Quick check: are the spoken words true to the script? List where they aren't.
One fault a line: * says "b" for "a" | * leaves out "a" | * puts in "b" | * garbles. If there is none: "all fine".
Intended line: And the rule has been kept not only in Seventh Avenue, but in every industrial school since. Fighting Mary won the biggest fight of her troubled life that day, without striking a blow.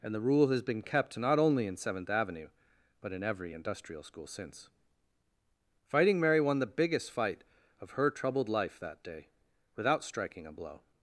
all fine